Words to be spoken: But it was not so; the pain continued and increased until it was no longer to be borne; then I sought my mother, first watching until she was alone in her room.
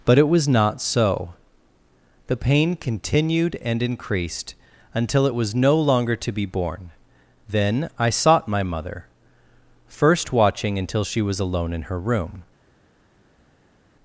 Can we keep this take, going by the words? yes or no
yes